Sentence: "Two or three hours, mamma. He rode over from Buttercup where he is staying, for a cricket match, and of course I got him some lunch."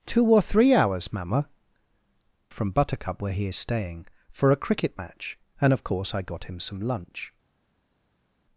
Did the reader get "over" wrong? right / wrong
wrong